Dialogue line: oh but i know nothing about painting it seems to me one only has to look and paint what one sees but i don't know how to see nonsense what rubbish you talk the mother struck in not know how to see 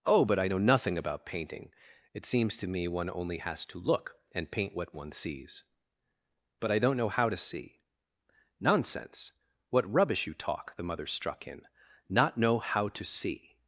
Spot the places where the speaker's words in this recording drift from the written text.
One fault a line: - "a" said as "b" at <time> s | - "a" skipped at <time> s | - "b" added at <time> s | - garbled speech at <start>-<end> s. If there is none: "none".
none